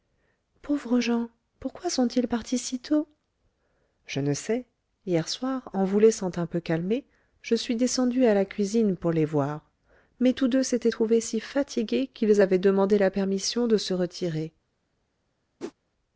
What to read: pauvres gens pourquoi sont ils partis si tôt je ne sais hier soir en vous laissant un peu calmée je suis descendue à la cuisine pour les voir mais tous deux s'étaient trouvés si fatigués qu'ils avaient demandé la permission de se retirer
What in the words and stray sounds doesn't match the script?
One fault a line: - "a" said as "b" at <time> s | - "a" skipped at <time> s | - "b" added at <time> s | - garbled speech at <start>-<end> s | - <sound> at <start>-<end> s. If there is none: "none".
- whoosh at 15.6-15.7 s